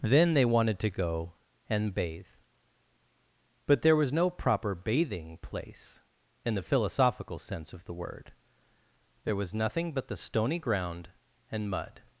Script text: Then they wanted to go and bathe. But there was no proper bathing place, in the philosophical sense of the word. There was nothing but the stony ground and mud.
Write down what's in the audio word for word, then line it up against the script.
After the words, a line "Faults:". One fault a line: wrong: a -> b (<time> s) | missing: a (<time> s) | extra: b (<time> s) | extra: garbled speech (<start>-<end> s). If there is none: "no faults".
Then they wanted to go and bathe. But there was no proper bathing place, in the philosophical sense of the word. There was nothing but the stony ground and mud.
Faults:
no faults